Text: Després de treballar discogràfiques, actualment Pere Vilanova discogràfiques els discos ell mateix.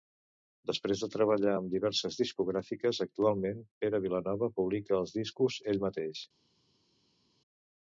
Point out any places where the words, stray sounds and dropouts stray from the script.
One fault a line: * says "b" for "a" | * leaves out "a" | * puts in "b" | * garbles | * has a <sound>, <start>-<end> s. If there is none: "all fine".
* puts in "amb diverses"
* says "publica" for "discogràfiques"